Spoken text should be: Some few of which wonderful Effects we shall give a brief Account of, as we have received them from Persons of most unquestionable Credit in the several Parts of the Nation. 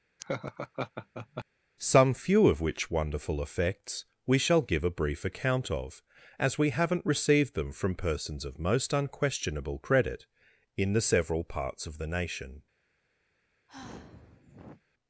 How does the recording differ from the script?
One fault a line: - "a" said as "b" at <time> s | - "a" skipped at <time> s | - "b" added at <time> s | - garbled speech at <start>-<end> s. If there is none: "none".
- "have" said as "haven't" at 6.7 s